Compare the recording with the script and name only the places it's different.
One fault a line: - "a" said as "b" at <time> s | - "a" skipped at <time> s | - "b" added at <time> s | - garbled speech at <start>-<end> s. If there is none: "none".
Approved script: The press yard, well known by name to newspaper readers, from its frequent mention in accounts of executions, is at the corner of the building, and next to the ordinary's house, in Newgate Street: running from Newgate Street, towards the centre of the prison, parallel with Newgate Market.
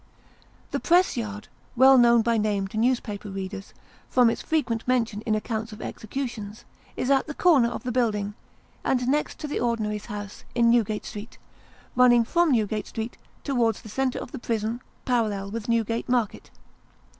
none